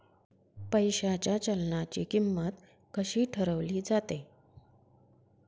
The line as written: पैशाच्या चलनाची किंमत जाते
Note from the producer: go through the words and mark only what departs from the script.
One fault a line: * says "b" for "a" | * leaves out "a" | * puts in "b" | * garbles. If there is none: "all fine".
* puts in "कशी ठरवली"